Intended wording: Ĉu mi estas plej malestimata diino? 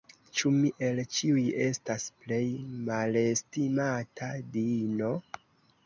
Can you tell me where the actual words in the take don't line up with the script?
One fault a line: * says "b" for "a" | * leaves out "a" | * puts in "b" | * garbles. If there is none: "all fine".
* puts in "el ĉiuj"